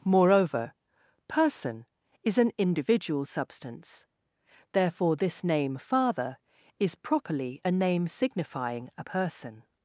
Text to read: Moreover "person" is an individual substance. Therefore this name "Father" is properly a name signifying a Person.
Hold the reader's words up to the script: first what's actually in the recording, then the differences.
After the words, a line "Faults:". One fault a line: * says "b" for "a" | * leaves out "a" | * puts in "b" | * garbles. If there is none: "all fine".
Moreover "person" is an individual substance. Therefore this name "Father" is properly a name signifying a Person.
Faults:
all fine